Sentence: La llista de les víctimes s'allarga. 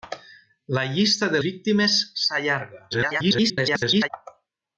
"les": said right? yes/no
no